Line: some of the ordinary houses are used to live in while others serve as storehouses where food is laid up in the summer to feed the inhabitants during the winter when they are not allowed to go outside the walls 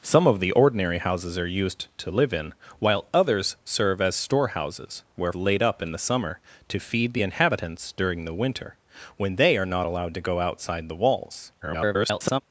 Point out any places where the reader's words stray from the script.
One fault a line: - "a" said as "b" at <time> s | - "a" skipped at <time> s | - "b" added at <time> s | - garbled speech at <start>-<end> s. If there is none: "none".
- "food is" skipped at 5.3 s
- garbled speech at 11.6-12.4 s